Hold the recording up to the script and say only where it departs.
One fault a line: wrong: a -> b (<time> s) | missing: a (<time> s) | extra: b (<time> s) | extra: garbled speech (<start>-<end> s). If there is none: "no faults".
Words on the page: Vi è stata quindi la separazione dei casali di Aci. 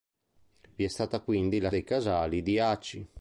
missing: separazione (1.7 s)